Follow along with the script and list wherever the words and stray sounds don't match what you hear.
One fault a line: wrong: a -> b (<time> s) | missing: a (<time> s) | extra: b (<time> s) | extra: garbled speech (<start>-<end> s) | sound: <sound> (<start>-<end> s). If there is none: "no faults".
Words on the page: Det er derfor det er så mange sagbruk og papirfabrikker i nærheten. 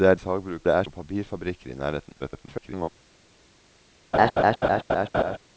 wrong: derfor -> sagbruk (0.2 s)
missing: så mange sagbruk (0.8 s)
extra: garbled speech (2.2-2.9 s)
sound: laugh (4.1-5.4 s)